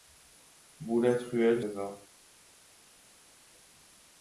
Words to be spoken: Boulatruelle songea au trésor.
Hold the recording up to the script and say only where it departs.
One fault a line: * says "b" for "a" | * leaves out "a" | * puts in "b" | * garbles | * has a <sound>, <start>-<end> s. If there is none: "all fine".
* leaves out "songea au"